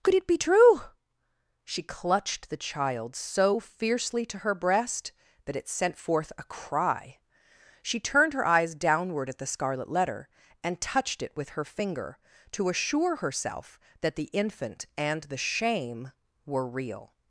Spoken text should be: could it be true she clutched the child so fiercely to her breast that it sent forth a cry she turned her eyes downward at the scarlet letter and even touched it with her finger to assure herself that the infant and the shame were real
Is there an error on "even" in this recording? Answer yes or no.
yes